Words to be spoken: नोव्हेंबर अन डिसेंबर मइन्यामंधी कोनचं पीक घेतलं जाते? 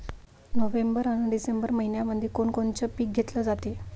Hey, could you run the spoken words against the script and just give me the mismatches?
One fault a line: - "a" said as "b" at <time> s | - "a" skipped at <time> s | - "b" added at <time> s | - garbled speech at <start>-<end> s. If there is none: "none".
- "कोण" added at 2.3 s